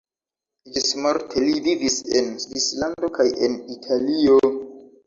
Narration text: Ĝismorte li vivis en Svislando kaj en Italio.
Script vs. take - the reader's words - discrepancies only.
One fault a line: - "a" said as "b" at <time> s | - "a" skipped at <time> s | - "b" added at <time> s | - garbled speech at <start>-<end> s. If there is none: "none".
none